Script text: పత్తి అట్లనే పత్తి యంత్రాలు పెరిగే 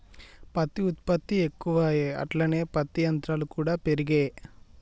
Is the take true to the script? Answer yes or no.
no